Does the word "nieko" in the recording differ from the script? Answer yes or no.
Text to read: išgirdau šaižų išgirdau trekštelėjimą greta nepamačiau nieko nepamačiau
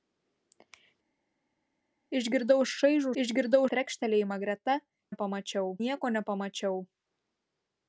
no